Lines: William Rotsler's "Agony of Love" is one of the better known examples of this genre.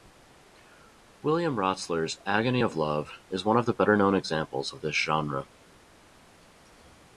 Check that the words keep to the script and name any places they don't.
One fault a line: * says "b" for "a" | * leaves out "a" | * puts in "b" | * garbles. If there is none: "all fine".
all fine